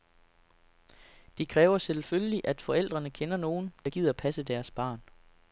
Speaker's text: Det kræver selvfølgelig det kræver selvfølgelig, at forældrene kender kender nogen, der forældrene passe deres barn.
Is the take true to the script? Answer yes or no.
no